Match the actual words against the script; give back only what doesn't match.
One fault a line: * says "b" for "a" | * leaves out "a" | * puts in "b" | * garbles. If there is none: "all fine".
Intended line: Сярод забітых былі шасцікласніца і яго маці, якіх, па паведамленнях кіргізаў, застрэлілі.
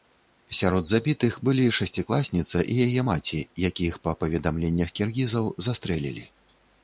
* says "яе" for "яго"